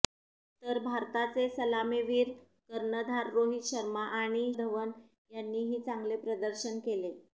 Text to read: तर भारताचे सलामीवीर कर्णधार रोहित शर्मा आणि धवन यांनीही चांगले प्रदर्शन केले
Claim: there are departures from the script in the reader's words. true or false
false